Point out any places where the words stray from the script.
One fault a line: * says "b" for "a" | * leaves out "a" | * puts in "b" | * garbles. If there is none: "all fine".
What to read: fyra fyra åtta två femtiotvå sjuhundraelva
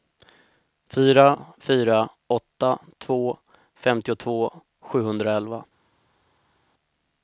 all fine